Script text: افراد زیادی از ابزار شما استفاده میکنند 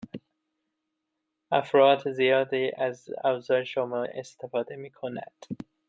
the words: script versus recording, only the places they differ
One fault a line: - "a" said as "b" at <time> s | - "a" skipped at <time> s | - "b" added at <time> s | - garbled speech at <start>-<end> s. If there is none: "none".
none